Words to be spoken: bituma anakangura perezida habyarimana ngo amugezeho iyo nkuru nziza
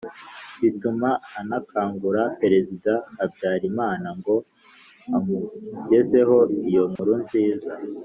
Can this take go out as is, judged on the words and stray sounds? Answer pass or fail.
fail